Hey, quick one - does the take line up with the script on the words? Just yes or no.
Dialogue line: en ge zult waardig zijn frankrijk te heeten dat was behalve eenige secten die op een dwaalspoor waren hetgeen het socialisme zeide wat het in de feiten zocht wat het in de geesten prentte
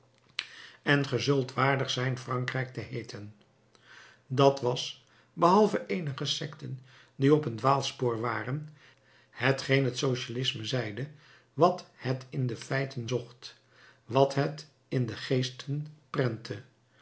yes